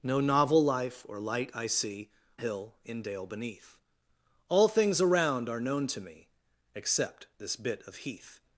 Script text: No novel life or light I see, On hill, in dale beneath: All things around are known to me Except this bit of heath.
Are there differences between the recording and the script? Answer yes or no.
yes